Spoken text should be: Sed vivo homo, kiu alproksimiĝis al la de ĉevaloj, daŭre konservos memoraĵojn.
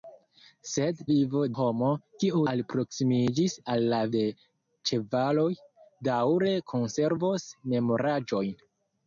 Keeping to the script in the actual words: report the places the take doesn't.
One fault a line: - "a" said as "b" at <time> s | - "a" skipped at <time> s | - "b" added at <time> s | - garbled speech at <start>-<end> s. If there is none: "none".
none